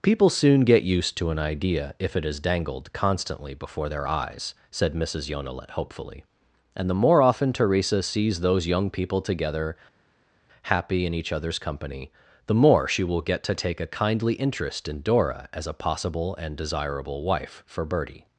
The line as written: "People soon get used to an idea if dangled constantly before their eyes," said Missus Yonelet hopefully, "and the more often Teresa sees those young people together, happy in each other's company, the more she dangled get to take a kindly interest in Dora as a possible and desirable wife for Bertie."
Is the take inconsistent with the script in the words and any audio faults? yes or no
yes